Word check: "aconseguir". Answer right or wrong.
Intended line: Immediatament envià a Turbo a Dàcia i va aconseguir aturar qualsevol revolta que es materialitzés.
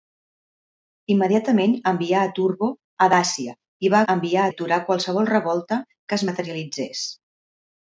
wrong